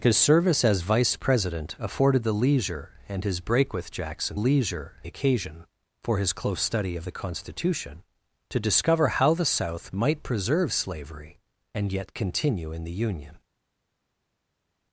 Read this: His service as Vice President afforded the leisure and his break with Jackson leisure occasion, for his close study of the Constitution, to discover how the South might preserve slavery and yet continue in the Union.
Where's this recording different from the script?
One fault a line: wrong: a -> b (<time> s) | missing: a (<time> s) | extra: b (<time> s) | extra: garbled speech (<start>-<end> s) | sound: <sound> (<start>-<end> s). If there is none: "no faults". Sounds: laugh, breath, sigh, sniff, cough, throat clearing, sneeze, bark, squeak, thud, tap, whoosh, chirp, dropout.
no faults